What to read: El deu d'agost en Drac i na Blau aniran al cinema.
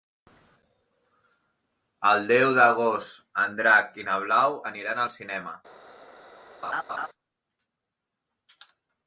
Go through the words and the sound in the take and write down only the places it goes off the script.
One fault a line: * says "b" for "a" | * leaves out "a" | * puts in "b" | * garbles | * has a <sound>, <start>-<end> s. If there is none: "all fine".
* has a laugh, 6.6-7.1 s